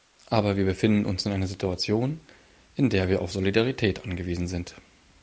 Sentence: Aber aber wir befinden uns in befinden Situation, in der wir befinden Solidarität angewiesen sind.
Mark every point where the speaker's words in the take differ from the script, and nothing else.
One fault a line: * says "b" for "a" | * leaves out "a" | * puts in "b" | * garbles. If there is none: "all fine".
* leaves out "aber"
* says "einer" for "befinden"
* says "auf" for "befinden"